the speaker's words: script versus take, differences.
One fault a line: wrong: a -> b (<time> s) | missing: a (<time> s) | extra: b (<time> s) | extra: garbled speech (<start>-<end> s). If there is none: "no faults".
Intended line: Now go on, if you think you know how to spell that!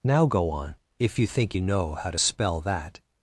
no faults